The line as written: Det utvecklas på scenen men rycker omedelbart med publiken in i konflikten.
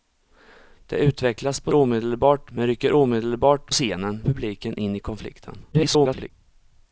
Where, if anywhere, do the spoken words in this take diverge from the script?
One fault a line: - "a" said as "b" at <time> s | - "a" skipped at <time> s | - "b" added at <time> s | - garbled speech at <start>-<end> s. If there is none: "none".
- "scenen" said as "omedelbart" at 1.7 s
- "med" said as "scenen" at 3.7 s
- garbled speech at 5.7-6.3 s